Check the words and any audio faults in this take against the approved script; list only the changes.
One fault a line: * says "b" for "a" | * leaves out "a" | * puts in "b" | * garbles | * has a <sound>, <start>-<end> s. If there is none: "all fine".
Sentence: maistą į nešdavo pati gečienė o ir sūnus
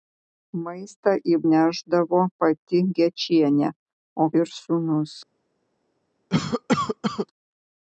* has a cough, 6.3-7.3 s